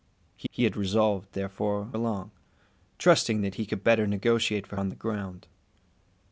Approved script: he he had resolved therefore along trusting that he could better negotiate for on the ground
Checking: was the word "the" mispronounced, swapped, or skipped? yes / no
no